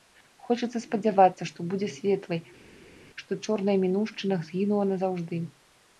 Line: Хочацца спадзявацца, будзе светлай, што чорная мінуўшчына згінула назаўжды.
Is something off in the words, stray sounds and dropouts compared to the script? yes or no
yes